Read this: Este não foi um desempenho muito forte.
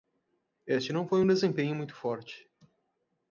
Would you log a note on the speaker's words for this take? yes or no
no